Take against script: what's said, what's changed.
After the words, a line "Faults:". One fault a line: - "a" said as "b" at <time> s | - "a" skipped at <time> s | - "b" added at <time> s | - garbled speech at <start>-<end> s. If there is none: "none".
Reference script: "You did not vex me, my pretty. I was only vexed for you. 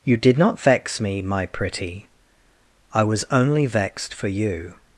"You did not vex me, my pretty. I was only vexed for you.
Faults:
none